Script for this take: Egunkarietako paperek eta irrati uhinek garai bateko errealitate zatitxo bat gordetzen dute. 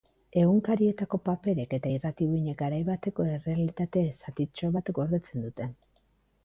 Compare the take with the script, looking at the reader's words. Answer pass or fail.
pass